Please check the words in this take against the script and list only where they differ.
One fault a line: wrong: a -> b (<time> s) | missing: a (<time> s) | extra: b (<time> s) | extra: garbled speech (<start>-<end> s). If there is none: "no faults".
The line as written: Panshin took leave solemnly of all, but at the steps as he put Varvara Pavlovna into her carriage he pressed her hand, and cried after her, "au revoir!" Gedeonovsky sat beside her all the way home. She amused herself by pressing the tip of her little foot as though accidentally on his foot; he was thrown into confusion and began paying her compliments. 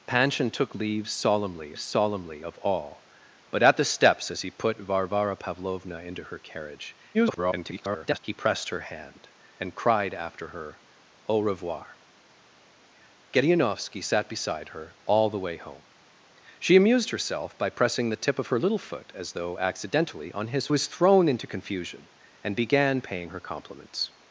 extra: solemnly (1.8 s)
extra: garbled speech (7.1-8.2 s)
missing: foot he (20.7 s)